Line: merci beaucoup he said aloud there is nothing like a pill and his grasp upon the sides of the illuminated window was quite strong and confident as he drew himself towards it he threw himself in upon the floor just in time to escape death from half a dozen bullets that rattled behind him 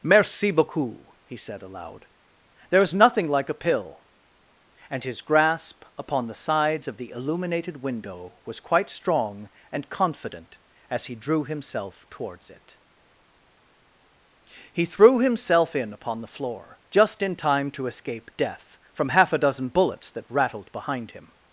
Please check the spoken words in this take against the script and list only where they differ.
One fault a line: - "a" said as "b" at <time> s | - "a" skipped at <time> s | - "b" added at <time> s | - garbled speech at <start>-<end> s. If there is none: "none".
none